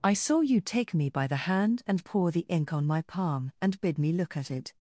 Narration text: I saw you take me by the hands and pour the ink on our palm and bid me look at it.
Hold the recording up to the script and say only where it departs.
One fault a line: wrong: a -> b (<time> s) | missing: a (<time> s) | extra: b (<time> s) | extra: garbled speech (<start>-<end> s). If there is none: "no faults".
wrong: hands -> hand (1.4 s)
wrong: our -> my (2.9 s)